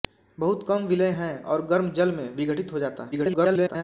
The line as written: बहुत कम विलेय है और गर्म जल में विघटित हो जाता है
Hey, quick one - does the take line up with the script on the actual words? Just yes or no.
no